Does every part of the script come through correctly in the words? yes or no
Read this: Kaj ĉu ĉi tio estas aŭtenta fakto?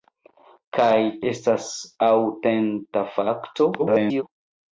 no